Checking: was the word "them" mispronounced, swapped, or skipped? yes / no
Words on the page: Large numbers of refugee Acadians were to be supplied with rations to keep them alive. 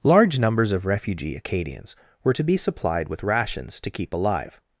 yes